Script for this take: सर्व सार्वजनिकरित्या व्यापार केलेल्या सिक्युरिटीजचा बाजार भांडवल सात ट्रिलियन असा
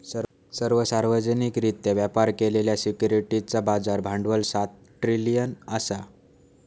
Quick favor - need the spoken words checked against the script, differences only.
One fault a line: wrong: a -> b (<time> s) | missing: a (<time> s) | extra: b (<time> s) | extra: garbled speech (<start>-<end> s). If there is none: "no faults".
no faults